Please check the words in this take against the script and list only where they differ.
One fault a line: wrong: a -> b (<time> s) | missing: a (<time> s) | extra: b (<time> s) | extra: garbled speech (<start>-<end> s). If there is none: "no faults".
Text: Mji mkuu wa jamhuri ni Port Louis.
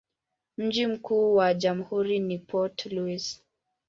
no faults